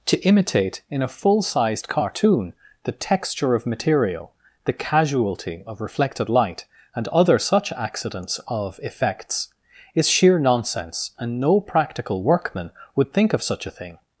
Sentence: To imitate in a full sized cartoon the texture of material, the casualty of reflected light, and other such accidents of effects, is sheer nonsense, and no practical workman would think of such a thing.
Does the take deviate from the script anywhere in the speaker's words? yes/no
no